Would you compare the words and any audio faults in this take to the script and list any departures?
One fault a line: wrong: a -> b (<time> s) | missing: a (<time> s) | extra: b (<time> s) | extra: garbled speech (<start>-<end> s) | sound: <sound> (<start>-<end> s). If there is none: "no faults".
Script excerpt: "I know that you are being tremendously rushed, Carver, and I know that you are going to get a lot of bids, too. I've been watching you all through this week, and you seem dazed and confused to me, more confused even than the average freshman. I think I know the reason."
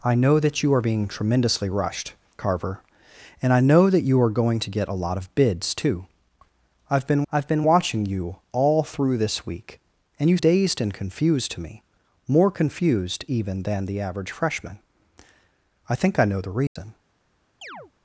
extra: I've been (7.3 s)
missing: seem (10.4 s)
sound: dropout (16.7-16.8 s)
sound: chirp (17.6-17.9 s)